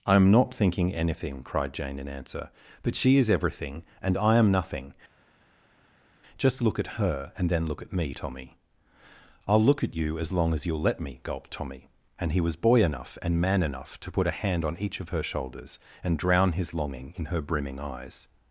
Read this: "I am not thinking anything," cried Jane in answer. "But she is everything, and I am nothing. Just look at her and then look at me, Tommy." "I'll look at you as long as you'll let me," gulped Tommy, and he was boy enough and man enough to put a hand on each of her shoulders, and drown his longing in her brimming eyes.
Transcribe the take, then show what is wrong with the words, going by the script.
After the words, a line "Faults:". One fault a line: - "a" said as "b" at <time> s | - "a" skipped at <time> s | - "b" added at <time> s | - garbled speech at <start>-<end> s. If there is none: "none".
"I am not thinking anything," cried Jane in answer. "But she is everything, and I am nothing. Just look at her and then look at me, Tommy." "I'll look at you as long as you'll let me," gulped Tommy, and he was boy enough and man enough to put a hand on each of her shoulders, and drown his longing in her brimming eyes.
Faults:
none